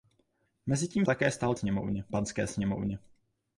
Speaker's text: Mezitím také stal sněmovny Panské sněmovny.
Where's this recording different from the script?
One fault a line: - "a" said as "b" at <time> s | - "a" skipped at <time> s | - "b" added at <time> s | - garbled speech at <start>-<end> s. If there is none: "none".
none